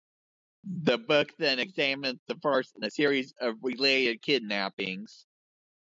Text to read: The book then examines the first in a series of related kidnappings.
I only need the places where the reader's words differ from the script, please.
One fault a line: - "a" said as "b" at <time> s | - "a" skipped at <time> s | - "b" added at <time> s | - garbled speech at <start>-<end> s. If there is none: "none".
none